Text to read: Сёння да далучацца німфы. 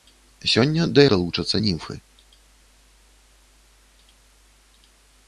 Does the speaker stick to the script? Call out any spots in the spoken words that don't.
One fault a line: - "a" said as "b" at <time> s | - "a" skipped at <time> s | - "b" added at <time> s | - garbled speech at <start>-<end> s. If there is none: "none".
none